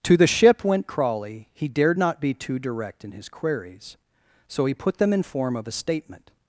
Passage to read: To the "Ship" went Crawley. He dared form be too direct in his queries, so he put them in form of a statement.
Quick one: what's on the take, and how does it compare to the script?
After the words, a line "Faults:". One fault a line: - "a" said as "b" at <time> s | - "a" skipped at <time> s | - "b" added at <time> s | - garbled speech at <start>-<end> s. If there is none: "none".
To the "Ship" went Crawley. He dared not be too direct in his queries, so he put them in form of a statement.
Faults:
- "form" said as "not" at 2.0 s